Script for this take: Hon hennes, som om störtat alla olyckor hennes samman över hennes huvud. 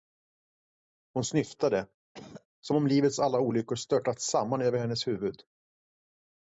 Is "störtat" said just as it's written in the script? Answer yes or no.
no